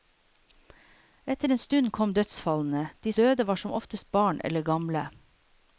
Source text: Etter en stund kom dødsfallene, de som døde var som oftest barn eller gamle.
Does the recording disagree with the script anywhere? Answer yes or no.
yes